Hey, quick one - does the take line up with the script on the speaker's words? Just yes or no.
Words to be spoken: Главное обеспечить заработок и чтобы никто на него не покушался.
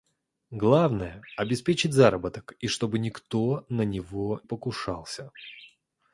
no